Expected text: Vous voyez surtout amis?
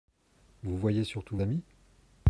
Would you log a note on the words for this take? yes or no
no